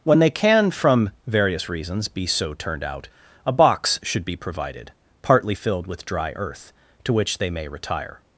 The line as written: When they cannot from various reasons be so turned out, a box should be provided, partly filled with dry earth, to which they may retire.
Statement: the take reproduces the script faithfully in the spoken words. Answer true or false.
false